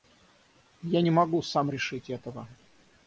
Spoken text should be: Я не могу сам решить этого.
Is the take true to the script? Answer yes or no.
yes